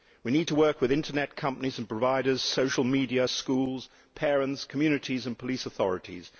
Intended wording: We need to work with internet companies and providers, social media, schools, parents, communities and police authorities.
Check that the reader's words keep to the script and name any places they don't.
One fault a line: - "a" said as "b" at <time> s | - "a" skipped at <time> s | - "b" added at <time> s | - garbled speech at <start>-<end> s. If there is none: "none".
none